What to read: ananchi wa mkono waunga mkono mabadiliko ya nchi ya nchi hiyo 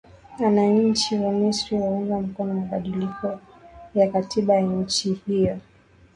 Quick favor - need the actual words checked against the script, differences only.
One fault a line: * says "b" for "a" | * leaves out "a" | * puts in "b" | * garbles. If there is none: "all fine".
* says "misri" for "mkono"
* says "katiba" for "nchi"